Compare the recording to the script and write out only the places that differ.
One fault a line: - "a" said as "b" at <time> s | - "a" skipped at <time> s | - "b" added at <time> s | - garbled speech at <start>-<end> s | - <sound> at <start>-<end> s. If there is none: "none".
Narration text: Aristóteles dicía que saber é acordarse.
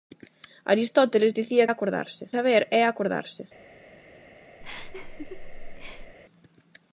- "que" said as "acordarse" at 1.7 s
- laugh at 4.6-6.2 s